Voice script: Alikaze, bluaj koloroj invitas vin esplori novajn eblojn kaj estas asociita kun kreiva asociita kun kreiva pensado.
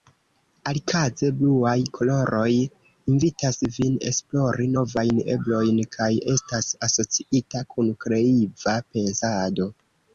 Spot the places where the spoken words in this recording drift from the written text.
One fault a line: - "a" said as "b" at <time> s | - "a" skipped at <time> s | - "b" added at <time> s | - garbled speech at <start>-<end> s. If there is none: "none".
- "asociita kun kreiva" skipped at 8.8 s